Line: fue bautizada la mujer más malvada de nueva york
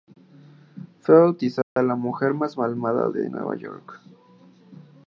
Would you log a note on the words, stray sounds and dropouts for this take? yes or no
yes